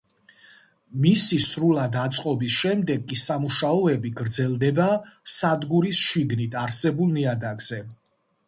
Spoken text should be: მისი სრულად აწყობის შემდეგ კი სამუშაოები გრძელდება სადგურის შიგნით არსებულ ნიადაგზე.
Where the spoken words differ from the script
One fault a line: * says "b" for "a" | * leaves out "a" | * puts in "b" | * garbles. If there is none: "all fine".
all fine